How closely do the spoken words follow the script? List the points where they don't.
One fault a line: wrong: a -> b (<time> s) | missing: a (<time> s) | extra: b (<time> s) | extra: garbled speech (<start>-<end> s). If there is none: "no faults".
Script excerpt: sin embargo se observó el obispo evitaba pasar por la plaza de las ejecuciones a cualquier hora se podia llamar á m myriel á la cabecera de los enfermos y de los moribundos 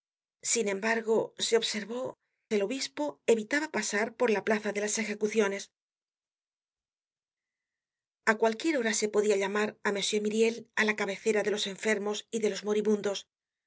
no faults